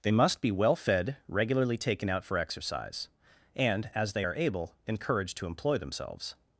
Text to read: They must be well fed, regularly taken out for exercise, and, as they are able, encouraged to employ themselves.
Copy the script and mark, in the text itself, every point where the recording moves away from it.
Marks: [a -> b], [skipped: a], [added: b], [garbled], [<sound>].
They must be well fed, regularly taken out for exercise, and, as they are able, encouraged to employ themselves.